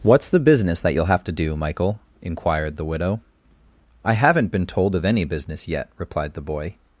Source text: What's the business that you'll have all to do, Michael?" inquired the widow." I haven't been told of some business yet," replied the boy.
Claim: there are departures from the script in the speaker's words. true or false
true